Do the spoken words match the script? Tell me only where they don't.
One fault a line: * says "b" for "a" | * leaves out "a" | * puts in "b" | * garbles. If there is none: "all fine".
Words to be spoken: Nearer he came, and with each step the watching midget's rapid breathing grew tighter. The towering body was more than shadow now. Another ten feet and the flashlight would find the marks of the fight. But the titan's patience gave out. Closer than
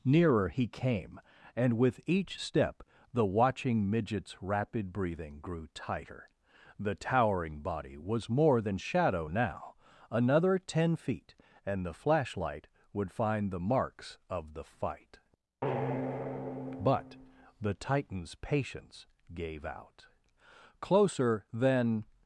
all fine